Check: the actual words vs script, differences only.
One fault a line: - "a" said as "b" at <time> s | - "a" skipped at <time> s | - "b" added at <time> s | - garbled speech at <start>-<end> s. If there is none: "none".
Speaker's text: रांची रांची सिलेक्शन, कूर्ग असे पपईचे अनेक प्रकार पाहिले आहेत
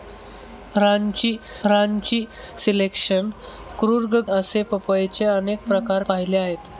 none